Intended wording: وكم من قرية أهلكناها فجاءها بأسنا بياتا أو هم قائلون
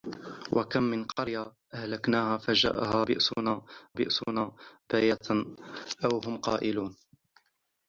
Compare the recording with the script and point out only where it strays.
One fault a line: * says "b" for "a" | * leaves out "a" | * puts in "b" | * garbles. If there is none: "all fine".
* puts in "بأسنا"